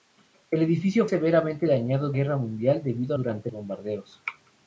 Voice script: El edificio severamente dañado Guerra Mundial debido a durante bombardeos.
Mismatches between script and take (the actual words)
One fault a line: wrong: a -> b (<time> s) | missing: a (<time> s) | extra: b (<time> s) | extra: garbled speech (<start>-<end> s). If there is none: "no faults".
no faults